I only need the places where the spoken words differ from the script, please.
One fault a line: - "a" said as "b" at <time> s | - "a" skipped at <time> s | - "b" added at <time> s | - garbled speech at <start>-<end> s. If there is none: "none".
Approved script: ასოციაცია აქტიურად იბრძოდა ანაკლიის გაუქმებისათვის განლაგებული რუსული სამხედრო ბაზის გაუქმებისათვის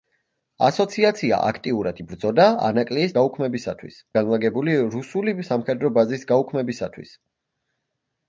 none